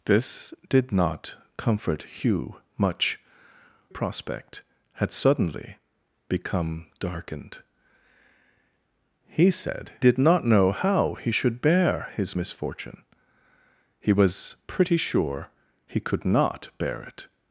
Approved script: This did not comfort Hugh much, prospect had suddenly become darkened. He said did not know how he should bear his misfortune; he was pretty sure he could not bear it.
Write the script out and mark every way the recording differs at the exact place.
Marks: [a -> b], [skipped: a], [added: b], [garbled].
This did not comfort Hugh much, prospect had suddenly become darkened. He said did not know how he should bear his misfortune; he was pretty sure he could not bear it.